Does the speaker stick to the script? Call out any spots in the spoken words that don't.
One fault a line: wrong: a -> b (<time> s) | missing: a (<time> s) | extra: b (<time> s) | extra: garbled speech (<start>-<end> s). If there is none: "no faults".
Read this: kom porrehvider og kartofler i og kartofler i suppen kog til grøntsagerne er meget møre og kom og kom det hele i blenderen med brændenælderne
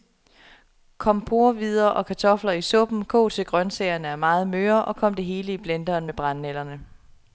missing: og kartofler i (2.6 s)
missing: og kom (5.1 s)